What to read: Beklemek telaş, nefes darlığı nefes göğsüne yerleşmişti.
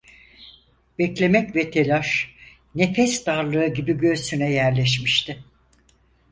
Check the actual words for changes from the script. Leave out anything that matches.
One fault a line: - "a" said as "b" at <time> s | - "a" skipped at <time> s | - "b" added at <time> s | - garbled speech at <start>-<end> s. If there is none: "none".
- "ve" added at 1.6 s
- "nefes" said as "gibi" at 3.7 s